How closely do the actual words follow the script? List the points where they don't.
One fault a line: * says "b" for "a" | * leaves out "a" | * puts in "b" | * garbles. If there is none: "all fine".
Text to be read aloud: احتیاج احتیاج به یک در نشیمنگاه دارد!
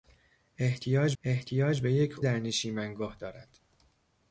all fine